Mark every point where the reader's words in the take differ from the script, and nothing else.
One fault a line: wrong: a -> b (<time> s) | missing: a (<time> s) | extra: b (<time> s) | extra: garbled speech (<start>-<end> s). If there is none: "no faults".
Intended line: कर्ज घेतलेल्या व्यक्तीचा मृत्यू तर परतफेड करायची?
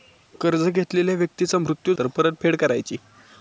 no faults